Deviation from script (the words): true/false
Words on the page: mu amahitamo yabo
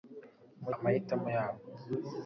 false